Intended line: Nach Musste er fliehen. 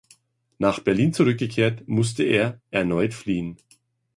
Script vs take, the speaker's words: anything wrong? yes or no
yes